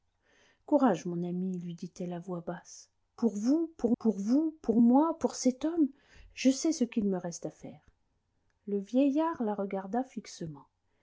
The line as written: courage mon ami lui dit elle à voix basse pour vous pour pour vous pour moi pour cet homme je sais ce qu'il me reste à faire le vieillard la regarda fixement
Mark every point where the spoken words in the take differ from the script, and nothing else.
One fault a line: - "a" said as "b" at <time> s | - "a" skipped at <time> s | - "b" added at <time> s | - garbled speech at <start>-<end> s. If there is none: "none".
none